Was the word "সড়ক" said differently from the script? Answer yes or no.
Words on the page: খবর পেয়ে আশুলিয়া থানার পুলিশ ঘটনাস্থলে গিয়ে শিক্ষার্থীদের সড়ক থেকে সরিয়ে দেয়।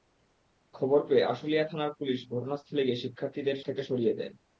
yes